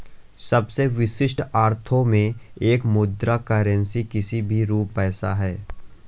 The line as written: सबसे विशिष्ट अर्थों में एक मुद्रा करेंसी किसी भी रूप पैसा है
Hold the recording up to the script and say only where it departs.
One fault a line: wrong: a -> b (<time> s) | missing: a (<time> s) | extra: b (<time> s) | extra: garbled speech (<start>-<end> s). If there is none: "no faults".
no faults